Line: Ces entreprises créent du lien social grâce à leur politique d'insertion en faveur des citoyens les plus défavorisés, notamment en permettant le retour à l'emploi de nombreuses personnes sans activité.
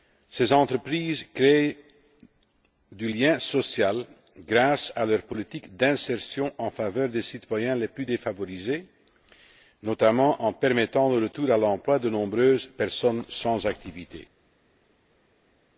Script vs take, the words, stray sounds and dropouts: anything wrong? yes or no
no